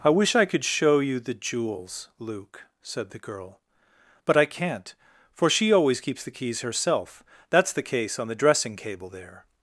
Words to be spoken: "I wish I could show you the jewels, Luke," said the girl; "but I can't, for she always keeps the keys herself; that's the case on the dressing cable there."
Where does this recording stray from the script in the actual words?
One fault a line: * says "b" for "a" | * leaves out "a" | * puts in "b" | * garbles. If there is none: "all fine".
all fine